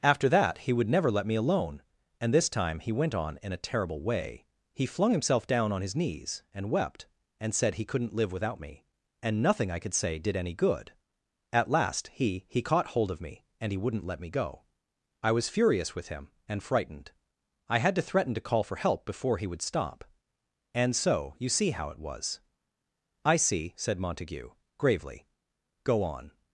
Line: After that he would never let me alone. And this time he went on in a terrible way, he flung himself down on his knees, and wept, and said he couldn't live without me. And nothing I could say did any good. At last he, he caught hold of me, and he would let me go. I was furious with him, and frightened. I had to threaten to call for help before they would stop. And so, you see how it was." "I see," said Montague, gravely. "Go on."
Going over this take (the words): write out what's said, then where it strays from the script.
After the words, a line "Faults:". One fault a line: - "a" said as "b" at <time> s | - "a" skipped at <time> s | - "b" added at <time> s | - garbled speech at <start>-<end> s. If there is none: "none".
After that he would never let me alone. And this time he went on in a terrible way, he flung himself down on his knees, and wept, and said he couldn't live without me. And nothing I could say did any good. At last he, he caught hold of me, and he wouldn't let me go. I was furious with him, and frightened. I had to threaten to call for help before he would stop. And so, you see how it was." "I see," said Montague, gravely. "Go on."
Faults:
- "would" said as "wouldn't" at 13.8 s
- "they" said as "he" at 19.4 s